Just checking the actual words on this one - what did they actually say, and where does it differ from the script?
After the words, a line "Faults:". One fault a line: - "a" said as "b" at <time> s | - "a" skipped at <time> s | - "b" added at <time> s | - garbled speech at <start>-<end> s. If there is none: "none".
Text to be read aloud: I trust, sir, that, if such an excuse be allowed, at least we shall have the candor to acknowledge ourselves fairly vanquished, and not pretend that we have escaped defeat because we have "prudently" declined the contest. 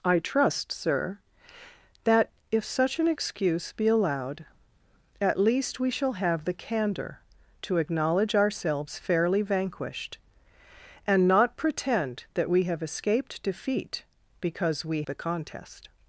I trust, sir, that, if such an excuse be allowed, at least we shall have the candor to acknowledge ourselves fairly vanquished, and not pretend that we have escaped defeat because we the contest.
Faults:
- "have prudently declined" skipped at 15.0 s